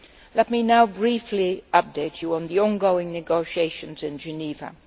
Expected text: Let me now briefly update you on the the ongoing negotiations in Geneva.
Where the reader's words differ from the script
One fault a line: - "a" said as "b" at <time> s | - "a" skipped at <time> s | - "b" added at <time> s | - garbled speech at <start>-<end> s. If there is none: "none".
- "the" skipped at 2.6 s